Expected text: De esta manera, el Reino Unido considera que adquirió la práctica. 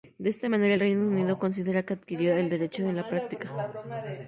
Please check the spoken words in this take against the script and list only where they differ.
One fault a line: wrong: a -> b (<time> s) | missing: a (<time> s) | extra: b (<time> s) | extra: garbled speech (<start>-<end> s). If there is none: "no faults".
extra: el derecho en (2.4 s)